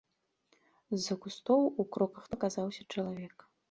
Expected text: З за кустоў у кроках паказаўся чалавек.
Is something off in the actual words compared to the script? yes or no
no